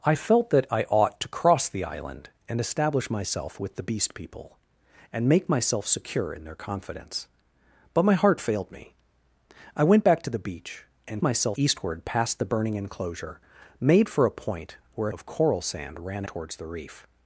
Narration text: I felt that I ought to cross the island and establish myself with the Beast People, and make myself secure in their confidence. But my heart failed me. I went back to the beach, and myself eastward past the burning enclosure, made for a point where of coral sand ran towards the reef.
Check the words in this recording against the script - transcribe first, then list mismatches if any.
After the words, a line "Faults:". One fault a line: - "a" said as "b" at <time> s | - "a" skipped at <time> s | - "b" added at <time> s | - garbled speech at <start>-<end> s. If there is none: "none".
I felt that I ought to cross the island and establish myself with the Beast People, and make myself secure in their confidence. But my heart failed me. I went back to the beach, and myself eastward past the burning enclosure, made for a point where of coral sand ran towards the reef.
Faults:
none